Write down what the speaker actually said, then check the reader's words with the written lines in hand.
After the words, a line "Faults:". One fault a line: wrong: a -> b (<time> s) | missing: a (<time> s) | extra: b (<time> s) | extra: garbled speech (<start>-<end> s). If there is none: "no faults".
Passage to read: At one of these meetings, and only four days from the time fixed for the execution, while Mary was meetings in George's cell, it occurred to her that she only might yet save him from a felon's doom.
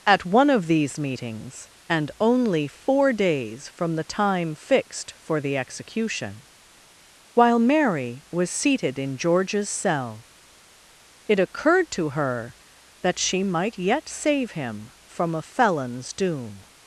At one of these meetings, and only four days from the time fixed for the execution, while Mary was seated in George's cell, it occurred to her that she might yet save him from a felon's doom.
Faults:
wrong: meetings -> seated (8.5 s)
missing: only (13.4 s)